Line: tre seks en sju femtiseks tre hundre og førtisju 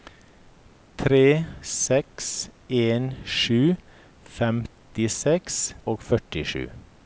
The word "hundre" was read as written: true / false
false